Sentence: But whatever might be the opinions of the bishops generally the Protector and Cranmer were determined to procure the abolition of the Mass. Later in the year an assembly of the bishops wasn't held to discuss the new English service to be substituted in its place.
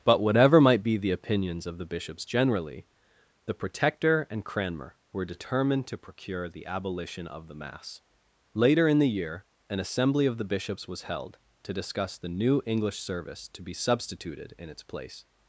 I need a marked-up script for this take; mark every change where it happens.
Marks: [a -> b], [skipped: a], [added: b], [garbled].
But whatever might be the opinions of the bishops generally the Protector and Cranmer were determined to procure the abolition of the Mass. Later in the year an assembly of the bishops [wasn't -> was] held to discuss the new English service to be substituted in its place.